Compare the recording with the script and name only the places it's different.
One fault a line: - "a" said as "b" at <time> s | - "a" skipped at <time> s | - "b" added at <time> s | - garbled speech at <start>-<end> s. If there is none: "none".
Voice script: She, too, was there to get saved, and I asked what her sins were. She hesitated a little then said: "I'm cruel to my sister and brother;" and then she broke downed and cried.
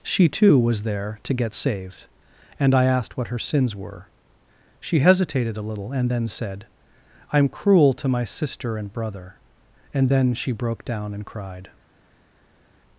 - "and" added at 5.9 s
- "downed" said as "down" at 10.8 s